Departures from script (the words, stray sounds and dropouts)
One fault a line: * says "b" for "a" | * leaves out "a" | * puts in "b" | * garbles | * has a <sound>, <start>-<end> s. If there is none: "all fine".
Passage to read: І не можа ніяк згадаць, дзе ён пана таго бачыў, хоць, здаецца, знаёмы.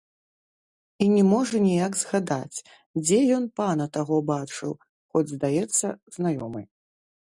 all fine